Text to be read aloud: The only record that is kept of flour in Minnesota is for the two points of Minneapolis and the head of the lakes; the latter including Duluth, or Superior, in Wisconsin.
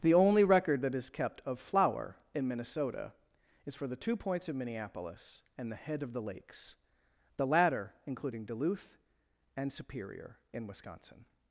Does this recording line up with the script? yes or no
no